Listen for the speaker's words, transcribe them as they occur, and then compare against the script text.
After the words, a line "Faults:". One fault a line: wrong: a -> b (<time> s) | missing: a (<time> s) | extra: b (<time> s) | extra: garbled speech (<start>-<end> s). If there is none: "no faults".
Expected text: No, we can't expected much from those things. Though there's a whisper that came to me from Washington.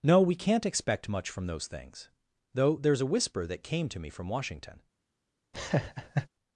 No, we can't expect much from those things. Though there's a whisper that came to me from Washington.
Faults:
wrong: expected -> expect (0.7 s)